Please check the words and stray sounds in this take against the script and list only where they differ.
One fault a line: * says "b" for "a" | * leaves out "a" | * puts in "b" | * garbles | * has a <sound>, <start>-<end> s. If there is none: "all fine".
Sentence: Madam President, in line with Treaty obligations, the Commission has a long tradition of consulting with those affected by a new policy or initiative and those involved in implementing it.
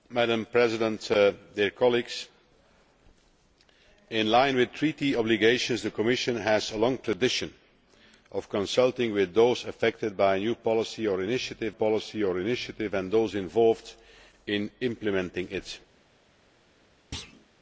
* puts in "policy or initiative"
* has a thud, 17.1-17.5 s